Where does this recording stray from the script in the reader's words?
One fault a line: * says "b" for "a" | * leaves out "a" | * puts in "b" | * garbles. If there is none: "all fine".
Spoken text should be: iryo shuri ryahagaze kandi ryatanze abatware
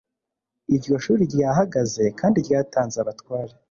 all fine